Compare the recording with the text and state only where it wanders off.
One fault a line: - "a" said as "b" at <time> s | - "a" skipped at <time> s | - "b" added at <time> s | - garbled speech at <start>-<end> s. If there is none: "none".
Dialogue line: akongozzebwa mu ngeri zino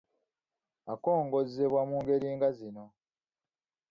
- "nga" added at 2.4 s